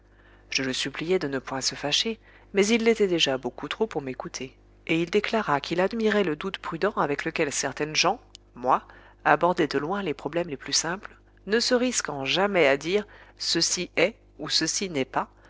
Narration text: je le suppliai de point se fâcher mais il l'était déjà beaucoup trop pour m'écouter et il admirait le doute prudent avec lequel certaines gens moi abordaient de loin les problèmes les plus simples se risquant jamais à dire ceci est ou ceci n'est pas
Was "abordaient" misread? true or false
false